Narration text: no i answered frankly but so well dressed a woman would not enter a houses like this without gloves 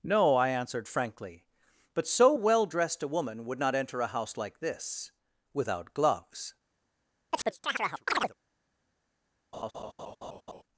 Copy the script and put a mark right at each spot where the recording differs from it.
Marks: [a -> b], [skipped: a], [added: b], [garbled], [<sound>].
no i answered frankly but so well dressed a woman would not enter a [houses -> house] like this without gloves [chirp] [laugh]